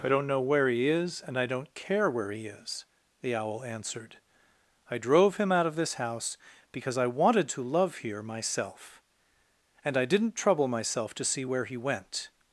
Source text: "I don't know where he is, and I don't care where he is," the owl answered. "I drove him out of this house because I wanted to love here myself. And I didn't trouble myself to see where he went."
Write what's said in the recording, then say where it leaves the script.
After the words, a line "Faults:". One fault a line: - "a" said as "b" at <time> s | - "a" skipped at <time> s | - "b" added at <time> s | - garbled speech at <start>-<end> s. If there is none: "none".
"I don't know where he is, and I don't care where he is," the owl answered. "I drove him out of this house because I wanted to love here myself. And I didn't trouble myself to see where he went."
Faults:
none